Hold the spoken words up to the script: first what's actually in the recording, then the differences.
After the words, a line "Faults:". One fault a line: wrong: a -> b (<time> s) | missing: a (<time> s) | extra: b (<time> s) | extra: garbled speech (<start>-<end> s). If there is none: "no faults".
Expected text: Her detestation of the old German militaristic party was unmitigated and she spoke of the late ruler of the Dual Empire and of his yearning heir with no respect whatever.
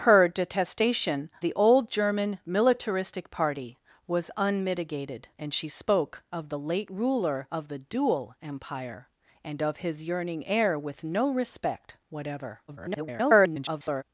Her detestation the old German militaristic party was unmitigated and she spoke of the late ruler of the Dual Empire and of his yearning heir with no respect whatever. [garbled]
Faults:
missing: of (1.3 s)
extra: garbled speech (12.7-14.0 s)